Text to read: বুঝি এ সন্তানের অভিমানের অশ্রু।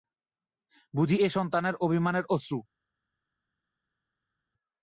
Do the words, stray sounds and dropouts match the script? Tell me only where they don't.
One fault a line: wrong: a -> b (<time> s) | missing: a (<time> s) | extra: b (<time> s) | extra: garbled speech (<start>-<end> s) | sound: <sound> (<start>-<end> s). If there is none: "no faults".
no faults